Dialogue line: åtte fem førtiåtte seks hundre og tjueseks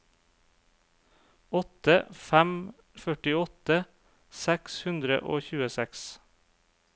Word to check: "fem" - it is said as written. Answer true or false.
true